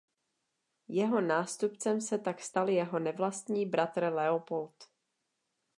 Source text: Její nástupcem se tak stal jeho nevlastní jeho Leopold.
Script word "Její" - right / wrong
wrong